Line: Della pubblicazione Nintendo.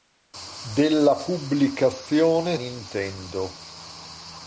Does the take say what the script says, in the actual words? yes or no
yes